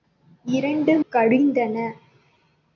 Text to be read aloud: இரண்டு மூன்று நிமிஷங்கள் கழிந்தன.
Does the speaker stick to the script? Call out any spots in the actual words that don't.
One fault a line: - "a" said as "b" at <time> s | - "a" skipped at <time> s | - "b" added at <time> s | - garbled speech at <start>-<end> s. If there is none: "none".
- "மூன்று நிமிஷங்கள்" skipped at 1.0 s